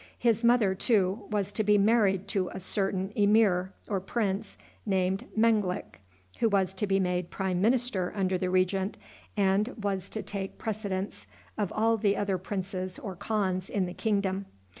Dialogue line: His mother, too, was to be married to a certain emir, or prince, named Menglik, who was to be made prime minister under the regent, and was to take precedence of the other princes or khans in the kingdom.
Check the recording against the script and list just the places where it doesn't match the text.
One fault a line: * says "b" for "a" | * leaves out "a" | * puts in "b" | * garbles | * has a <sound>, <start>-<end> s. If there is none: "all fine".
* puts in "all"